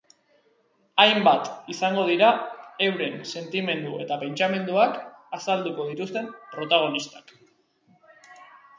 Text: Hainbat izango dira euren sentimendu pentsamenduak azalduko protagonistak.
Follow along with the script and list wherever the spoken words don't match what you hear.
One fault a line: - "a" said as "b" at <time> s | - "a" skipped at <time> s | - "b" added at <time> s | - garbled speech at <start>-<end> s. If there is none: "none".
- "eta" added at 4.1 s
- "dituzten" added at 5.9 s